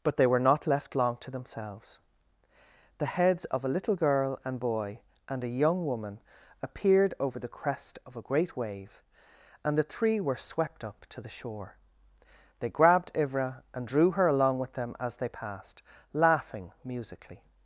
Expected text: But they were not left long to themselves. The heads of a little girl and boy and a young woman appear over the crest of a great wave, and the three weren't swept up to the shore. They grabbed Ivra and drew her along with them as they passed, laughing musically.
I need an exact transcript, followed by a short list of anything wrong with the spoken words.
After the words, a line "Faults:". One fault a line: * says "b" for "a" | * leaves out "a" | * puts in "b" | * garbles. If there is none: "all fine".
But they were not left long to themselves. The heads of a little girl and boy and a young woman appeared over the crest of a great wave, and the three were swept up to the shore. They grabbed Ivra and drew her along with them as they passed, laughing musically.
Faults:
* says "appeared" for "appear"
* says "were" for "weren't"